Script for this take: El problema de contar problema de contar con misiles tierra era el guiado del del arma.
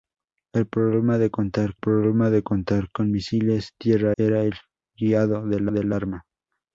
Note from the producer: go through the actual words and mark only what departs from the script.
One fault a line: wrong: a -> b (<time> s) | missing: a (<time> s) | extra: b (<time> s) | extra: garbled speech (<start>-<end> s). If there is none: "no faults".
no faults